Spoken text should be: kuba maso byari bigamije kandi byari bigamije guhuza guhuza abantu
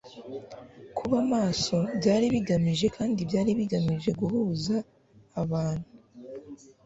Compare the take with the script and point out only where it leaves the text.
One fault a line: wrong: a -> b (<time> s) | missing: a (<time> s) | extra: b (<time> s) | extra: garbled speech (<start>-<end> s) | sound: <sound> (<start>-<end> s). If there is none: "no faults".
missing: guhuza (4.8 s)